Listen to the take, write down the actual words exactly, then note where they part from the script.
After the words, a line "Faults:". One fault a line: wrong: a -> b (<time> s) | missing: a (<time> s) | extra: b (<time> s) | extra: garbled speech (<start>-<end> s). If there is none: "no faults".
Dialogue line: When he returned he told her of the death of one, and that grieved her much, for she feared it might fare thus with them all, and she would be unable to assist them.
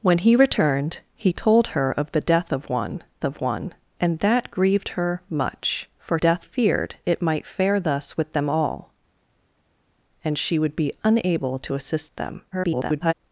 When he returned he told her of the death of one of one, and that grieved her much, for death feared it might fare thus with them all, and she would be unable to assist them. [garbled]
Faults:
extra: of one (3.2 s)
wrong: she -> death (6.2 s)
extra: garbled speech (12.5-13.1 s)